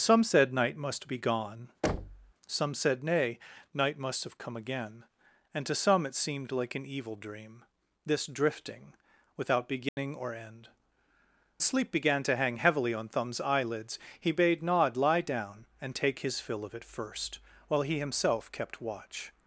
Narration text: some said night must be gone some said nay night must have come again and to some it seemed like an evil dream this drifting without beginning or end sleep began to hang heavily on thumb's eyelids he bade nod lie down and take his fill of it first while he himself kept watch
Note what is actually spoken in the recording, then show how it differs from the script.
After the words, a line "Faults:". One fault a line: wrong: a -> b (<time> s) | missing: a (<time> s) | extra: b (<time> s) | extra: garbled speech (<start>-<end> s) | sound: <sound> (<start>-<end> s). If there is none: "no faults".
some said night must be gone some said nay night must have come again and to some it seemed like an evil dream this drifting without beginning or end sleep began to hang heavily on thumb's eyelids he bade nod lie down and take his fill of it first while he himself kept watch
Faults:
sound: thud (1.8-2.3 s)
sound: dropout (9.9-10.0 s)